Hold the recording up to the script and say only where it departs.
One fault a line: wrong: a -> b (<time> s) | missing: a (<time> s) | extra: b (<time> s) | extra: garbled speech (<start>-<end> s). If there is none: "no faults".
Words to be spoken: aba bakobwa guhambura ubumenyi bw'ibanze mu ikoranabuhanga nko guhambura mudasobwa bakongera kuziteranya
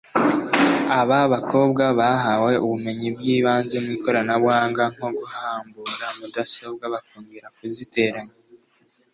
wrong: guhambura -> bahawe (2.0 s)